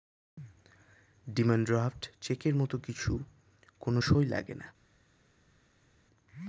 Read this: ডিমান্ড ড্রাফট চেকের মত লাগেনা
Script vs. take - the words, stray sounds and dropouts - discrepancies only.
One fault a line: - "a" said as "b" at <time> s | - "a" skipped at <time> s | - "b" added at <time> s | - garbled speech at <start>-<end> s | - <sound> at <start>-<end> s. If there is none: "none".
- "কিছু কোন সই" added at 2.8 s